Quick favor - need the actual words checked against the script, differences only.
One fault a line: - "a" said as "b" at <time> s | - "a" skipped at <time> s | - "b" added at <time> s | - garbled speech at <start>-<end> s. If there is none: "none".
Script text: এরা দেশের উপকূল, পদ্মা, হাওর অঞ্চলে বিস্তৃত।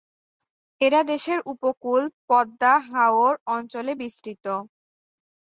none